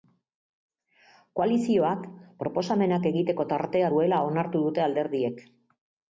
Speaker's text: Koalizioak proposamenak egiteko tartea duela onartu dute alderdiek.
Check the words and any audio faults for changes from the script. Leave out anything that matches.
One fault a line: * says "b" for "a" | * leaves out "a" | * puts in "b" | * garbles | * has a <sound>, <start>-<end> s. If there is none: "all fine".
all fine